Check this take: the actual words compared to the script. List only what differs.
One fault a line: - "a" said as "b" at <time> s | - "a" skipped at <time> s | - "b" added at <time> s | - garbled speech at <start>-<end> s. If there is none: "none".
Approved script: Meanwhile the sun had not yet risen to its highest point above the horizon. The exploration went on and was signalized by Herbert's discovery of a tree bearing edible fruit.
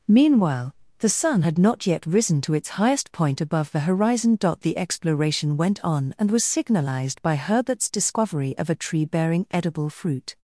none